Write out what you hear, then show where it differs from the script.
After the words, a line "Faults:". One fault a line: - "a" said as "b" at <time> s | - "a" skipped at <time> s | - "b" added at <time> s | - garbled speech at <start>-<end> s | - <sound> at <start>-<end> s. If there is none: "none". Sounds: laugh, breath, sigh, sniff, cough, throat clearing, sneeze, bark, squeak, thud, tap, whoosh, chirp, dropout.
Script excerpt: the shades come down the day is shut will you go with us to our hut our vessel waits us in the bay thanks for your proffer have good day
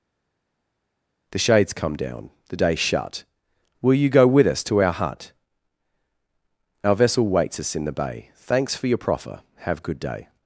the shades come down the day shut will you go with us to our hut our vessel waits us in the bay thanks for your proffer have good day
Faults:
- "is" skipped at 2.8 s